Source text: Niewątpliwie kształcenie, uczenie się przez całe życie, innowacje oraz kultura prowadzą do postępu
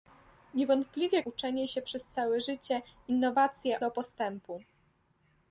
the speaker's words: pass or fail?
fail